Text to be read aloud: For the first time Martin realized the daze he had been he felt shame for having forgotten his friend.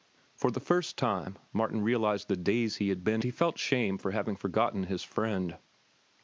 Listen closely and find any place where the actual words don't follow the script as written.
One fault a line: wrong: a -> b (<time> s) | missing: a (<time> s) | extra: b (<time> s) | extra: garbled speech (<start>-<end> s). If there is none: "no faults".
no faults